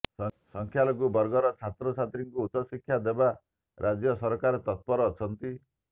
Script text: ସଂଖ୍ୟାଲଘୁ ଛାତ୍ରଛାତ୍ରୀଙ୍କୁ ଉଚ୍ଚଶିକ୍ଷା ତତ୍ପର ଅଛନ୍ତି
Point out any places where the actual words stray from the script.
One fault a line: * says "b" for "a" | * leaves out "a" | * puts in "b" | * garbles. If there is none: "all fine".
* puts in "ବର୍ଗର"
* puts in "ଦେବା ରାଜ୍ୟ ସରକାର"